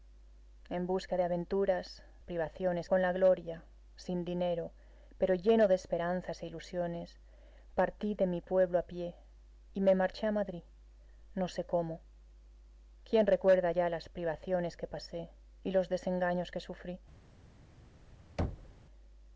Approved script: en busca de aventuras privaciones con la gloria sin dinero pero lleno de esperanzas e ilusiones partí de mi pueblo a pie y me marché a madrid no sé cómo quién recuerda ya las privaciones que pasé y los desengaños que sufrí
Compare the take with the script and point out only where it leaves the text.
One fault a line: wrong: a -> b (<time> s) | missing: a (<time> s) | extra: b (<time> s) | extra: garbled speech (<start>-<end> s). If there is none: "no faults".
no faults